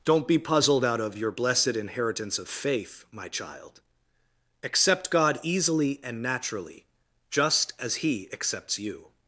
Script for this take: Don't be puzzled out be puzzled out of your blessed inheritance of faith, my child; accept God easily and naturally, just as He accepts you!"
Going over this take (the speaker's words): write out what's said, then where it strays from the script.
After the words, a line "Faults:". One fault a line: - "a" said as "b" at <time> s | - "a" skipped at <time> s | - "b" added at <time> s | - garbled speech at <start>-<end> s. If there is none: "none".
Don't be puzzled out of your blessed inheritance of faith, my child; accept God easily and naturally, just as He accepts you!"
Faults:
- "be puzzled out" skipped at 1.0 s